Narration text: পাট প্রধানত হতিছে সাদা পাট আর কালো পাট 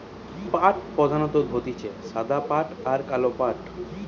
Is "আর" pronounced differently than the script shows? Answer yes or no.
no